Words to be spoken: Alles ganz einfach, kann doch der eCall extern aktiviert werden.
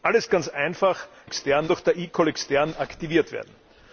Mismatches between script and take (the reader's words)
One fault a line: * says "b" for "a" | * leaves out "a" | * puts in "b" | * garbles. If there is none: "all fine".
* says "extern" for "kann"